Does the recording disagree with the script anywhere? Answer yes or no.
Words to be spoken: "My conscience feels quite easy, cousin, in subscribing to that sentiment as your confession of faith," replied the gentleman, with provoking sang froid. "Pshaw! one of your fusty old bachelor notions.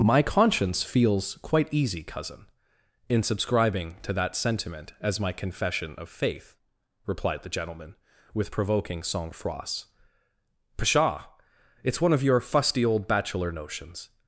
yes